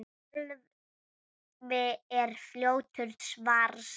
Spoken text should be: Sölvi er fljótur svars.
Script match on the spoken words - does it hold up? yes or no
yes